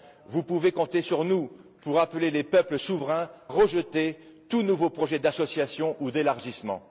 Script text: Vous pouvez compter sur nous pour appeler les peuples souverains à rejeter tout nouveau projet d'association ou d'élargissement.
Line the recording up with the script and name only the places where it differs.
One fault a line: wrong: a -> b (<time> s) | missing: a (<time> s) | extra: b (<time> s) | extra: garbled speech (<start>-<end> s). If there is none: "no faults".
missing: à (3.3 s)